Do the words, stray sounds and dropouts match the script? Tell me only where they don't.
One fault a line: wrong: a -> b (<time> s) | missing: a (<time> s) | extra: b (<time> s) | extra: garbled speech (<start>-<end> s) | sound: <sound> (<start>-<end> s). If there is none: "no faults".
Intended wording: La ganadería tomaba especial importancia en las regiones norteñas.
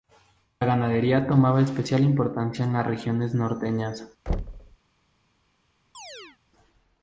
sound: thud (4.3-4.8 s)
sound: chirp (5.9-6.4 s)